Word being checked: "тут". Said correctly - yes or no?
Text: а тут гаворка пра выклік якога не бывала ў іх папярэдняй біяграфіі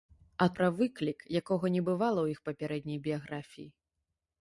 no